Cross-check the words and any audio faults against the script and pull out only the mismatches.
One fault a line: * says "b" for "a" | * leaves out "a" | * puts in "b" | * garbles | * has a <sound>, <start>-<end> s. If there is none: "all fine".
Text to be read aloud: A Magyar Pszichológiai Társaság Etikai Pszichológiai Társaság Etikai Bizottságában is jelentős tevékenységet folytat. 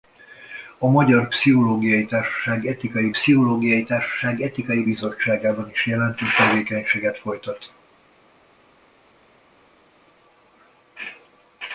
all fine